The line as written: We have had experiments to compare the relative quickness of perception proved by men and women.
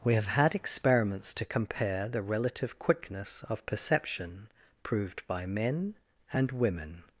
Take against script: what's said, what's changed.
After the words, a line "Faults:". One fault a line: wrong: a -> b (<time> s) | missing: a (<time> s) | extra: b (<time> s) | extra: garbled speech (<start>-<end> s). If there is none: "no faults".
We have had experiments to compare the relative quickness of perception proved by men and women.
Faults:
no faults